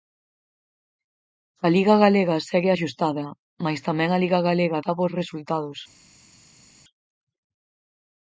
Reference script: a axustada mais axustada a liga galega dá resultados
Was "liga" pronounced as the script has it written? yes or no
yes